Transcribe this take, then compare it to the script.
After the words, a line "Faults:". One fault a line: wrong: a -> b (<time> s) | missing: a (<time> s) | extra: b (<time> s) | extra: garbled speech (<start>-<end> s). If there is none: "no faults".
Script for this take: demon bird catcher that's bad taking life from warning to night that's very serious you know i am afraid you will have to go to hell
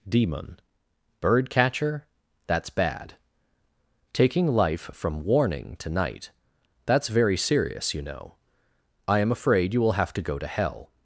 demon bird catcher that's bad taking life from warning to night that's very serious you know i am afraid you will have to go to hell
Faults:
no faults